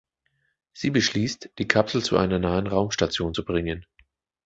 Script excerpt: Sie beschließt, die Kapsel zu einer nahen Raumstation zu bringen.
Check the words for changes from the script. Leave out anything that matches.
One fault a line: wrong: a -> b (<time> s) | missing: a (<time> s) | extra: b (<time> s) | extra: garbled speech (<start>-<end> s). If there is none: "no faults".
no faults